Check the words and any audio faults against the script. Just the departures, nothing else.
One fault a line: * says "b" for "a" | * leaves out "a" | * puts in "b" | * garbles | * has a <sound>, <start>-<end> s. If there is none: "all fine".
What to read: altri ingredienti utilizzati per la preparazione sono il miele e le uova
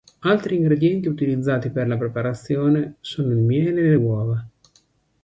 all fine